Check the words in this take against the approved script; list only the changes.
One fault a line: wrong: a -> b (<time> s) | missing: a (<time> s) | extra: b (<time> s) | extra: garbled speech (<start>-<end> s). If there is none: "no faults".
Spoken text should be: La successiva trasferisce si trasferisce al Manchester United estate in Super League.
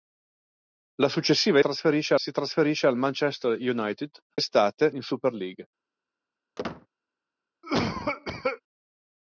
no faults